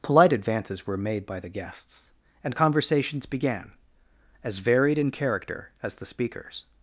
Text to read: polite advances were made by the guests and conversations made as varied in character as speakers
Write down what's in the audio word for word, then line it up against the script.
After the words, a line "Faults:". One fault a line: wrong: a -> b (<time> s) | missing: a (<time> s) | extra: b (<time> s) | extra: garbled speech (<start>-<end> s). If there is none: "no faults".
polite advances were made by the guests and conversations began as varied in character as the speakers
Faults:
wrong: made -> began (3.3 s)
extra: the (5.9 s)